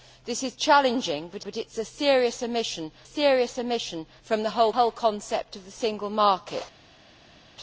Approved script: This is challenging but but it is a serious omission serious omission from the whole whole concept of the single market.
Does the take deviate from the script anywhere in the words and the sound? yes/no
no